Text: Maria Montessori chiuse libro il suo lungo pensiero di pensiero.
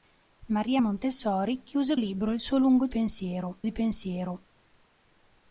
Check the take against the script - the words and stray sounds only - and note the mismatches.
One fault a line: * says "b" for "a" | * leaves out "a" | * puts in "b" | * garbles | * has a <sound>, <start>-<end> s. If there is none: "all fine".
all fine